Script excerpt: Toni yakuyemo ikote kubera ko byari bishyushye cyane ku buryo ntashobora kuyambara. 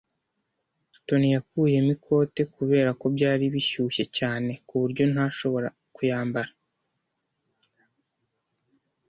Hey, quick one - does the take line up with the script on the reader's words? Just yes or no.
yes